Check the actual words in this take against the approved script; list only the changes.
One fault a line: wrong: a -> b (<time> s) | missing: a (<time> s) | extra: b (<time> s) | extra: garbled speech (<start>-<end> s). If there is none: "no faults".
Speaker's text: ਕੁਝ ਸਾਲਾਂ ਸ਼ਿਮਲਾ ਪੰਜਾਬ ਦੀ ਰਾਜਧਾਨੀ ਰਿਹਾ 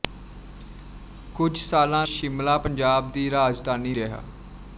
no faults